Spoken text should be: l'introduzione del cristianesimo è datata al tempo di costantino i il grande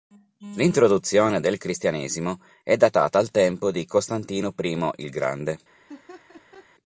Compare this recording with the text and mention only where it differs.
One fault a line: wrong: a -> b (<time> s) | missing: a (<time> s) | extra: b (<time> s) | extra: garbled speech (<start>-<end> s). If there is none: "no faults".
no faults